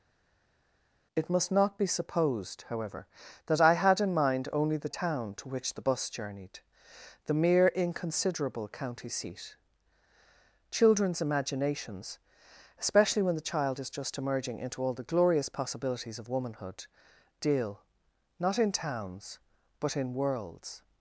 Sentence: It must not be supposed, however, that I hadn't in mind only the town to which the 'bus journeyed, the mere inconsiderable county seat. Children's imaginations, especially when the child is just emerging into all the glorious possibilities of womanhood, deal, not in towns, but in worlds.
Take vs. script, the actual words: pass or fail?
fail